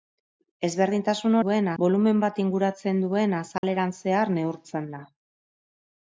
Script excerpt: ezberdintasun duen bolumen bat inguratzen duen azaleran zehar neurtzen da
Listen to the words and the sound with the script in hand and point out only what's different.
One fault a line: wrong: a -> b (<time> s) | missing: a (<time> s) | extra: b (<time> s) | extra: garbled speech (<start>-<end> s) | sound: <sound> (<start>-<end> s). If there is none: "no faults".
sound: dropout (3.6-3.6 s)